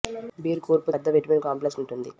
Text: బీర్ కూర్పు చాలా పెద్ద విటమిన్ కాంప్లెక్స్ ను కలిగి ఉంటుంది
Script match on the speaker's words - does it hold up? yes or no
no